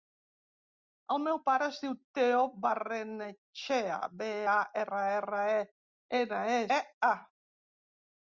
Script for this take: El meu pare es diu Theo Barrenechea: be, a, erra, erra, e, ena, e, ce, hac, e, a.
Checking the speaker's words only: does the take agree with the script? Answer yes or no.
no